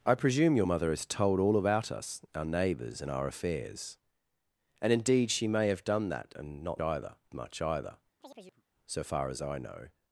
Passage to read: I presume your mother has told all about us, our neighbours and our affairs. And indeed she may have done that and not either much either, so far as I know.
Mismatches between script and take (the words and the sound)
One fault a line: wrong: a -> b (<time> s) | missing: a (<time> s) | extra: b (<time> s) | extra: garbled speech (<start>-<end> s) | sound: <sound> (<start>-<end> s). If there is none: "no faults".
sound: chirp (8.2-8.6 s)